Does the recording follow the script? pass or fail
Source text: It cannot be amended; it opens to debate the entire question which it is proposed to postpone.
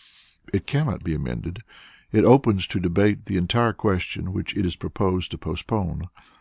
pass